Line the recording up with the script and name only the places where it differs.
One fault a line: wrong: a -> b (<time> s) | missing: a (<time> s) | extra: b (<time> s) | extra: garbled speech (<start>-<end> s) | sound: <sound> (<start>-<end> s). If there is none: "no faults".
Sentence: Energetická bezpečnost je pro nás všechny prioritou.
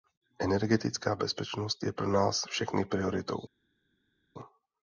no faults